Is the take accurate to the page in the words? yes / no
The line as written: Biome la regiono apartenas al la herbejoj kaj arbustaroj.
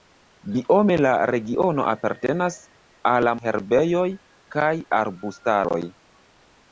yes